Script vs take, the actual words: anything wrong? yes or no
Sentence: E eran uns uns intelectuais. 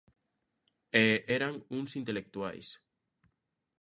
yes